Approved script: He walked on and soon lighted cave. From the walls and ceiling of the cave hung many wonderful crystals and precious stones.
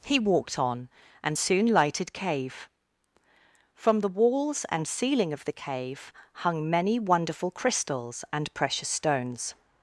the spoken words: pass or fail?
pass